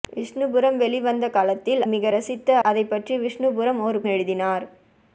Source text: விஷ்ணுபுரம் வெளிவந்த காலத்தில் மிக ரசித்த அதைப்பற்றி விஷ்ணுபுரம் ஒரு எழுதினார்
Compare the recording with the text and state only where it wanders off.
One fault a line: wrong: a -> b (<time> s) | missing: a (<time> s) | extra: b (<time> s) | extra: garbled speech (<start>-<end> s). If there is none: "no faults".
no faults